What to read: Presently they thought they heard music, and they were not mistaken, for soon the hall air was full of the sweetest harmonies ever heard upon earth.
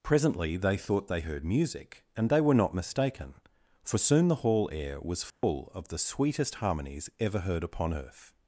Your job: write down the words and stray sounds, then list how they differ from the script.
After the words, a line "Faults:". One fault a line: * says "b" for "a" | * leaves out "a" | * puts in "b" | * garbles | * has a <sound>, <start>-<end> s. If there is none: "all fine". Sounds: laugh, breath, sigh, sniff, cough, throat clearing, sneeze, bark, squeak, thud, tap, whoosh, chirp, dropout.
Presently they thought they heard music, and they were not mistaken, for soon the hall air was full of the sweetest harmonies ever heard upon earth.
Faults:
* has a dropout, 5.3-5.4 s